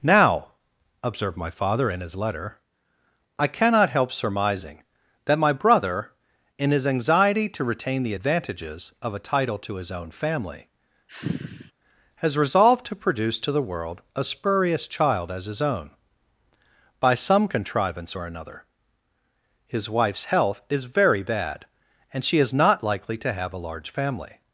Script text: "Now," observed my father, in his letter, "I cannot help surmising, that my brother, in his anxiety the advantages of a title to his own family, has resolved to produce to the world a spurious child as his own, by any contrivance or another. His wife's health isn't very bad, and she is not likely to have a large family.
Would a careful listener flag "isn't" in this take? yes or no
yes